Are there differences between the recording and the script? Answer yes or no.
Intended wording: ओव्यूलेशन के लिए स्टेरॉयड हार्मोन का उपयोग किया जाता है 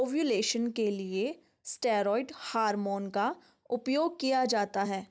no